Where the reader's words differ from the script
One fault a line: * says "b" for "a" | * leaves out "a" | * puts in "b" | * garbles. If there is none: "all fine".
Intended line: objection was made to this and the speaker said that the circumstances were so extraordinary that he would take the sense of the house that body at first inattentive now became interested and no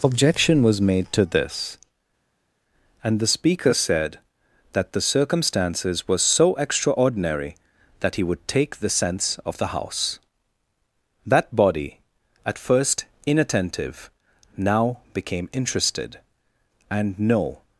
all fine